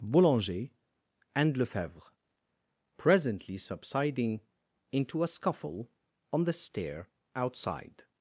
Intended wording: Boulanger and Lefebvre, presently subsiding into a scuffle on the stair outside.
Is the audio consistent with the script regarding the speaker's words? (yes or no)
yes